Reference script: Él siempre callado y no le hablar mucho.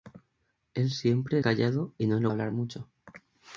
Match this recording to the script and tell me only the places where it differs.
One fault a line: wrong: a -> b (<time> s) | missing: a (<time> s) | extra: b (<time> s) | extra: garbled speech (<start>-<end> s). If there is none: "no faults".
no faults